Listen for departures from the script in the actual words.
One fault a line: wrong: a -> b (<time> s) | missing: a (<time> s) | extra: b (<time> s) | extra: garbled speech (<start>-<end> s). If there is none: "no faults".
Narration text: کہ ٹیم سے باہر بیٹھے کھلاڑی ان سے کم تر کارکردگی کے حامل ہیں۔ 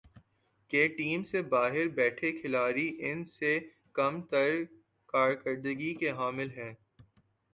no faults